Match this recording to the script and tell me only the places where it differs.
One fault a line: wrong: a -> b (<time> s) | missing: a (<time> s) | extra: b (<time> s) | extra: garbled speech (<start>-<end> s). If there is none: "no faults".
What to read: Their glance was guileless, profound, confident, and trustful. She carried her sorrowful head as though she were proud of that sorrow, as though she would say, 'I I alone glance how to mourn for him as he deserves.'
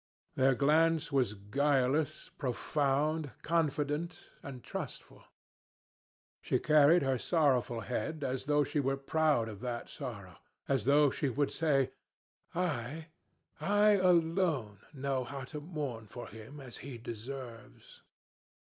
wrong: glance -> know (14.9 s)